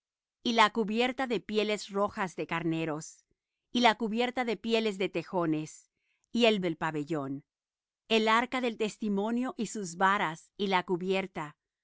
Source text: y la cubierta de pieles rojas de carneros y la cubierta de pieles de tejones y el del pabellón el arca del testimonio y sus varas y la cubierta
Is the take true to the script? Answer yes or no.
yes